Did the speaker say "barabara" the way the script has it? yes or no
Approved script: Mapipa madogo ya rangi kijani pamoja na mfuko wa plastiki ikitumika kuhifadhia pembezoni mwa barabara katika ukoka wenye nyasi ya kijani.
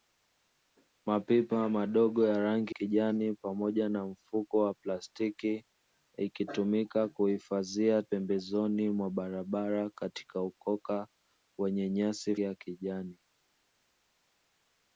yes